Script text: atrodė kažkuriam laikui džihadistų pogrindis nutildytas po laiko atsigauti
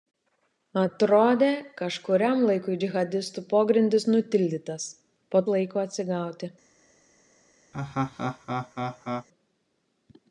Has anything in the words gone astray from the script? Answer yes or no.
no